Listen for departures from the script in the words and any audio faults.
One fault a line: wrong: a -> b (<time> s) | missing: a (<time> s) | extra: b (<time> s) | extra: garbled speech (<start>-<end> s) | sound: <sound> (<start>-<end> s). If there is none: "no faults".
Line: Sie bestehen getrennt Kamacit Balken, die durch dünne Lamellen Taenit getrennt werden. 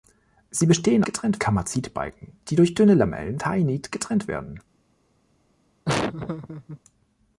sound: laugh (5.8-6.8 s)